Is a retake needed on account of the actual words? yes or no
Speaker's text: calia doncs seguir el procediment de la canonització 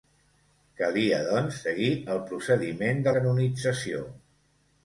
yes